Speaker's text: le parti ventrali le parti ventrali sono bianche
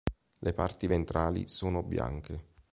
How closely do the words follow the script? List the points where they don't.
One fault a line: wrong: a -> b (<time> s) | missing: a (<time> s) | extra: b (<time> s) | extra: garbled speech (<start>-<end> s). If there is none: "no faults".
missing: le parti ventrali (1.5 s)